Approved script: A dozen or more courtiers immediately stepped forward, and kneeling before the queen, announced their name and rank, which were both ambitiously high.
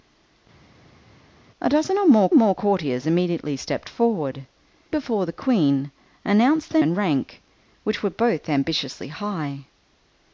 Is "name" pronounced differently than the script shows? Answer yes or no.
yes